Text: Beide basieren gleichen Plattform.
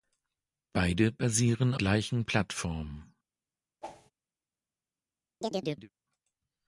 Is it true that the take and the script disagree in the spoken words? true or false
false